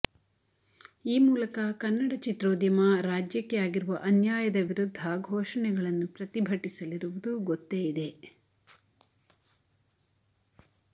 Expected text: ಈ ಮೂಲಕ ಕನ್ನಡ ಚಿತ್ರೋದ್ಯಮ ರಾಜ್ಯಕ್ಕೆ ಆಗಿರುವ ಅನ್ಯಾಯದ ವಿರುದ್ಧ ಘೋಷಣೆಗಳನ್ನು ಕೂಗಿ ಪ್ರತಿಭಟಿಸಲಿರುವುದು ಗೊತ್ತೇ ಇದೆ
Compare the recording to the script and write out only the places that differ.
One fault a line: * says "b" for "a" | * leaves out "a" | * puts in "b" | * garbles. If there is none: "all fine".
* leaves out "ಕೂಗಿ"